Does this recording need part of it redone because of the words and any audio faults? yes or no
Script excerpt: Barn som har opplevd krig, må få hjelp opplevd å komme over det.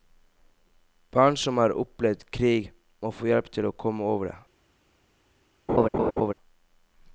yes